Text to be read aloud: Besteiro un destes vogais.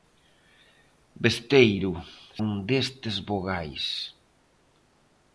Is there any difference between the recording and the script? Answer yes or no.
no